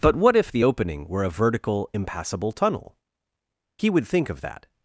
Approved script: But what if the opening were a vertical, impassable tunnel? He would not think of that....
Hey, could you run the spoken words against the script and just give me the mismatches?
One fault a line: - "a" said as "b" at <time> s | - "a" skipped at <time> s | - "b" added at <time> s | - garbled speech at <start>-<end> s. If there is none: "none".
- "not" skipped at 4.1 s